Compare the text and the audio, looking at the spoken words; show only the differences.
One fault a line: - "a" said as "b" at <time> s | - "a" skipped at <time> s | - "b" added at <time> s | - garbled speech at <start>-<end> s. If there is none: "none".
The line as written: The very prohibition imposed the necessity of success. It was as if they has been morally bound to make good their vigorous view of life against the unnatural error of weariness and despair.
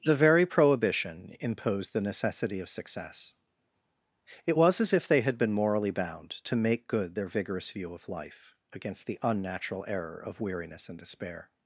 - "has" said as "had" at 5.2 s